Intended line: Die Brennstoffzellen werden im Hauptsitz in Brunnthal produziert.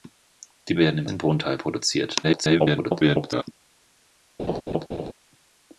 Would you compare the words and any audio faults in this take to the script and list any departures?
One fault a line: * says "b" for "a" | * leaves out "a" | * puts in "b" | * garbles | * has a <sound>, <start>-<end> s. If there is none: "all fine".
* leaves out "Brennstoffzellen"
* leaves out "Hauptsitz"
* garbles
* has a laugh, 4.4-5.1 s